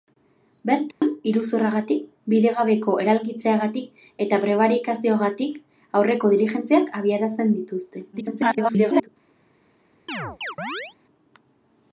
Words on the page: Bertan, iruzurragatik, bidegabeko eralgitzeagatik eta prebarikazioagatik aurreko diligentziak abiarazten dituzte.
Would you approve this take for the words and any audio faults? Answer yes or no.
no